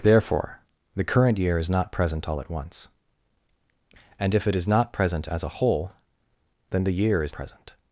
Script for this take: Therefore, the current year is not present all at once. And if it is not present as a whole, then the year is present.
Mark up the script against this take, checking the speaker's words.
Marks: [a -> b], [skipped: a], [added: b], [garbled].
Therefore, the current year is not present all at once. And if it is not present as a whole, then the year is present.